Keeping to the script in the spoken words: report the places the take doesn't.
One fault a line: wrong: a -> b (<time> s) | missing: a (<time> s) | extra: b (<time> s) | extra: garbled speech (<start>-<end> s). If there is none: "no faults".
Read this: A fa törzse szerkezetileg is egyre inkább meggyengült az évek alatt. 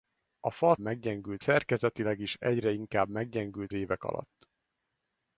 wrong: törzse -> meggyengült (0.8 s)
missing: az (3.7 s)